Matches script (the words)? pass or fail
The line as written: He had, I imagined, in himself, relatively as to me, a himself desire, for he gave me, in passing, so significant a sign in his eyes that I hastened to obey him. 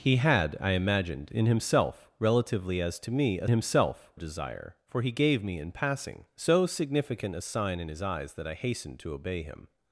pass